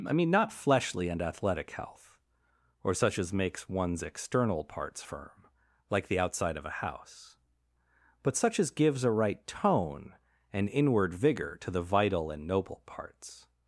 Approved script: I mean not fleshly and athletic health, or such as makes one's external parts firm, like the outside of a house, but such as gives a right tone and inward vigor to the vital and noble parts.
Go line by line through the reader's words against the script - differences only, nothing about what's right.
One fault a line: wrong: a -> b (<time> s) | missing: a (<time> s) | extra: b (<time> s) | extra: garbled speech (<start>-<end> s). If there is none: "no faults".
no faults